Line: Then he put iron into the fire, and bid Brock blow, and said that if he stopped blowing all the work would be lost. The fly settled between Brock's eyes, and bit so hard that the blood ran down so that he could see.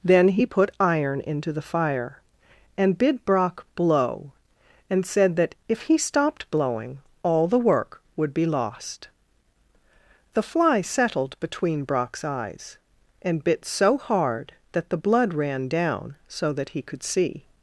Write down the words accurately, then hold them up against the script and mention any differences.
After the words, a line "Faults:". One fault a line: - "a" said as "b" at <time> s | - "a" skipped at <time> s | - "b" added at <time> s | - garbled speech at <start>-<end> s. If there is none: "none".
Then he put iron into the fire, and bid Brock blow, and said that if he stopped blowing all the work would be lost. The fly settled between Brock's eyes, and bit so hard that the blood ran down so that he could see.
Faults:
none